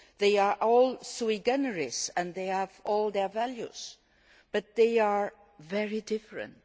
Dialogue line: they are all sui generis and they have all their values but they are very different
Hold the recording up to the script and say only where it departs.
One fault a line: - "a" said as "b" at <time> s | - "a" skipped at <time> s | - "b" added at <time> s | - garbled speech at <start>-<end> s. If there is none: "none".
none